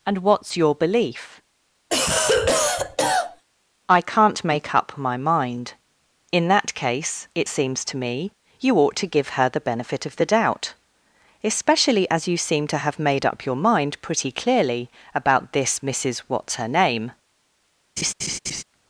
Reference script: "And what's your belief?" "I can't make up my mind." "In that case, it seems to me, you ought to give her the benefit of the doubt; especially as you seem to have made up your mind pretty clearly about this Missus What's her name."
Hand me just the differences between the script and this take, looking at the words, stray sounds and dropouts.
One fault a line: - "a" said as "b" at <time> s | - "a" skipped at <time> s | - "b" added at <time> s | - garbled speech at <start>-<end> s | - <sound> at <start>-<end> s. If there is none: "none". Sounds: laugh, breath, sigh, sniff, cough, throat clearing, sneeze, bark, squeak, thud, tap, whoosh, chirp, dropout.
- cough at 1.9-3.4 s
- laugh at 18.0-18.6 s